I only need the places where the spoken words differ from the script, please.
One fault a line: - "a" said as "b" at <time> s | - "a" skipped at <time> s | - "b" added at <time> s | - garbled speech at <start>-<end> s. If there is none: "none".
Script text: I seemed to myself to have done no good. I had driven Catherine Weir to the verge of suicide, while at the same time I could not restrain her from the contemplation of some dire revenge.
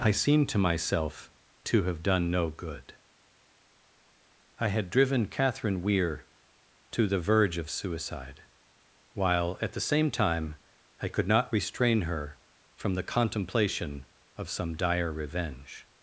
none